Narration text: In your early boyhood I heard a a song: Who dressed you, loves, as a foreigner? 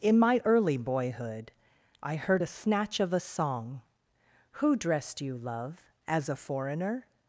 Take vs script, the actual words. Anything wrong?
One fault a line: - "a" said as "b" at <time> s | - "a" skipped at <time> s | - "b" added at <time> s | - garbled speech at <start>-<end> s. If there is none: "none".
- "your" said as "my" at 0.2 s
- "snatch of" added at 2.5 s
- "loves" said as "love" at 5.4 s